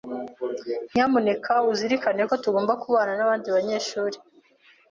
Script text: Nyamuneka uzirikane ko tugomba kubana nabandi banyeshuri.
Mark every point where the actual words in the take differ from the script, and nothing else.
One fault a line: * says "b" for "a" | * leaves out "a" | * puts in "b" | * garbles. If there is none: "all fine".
all fine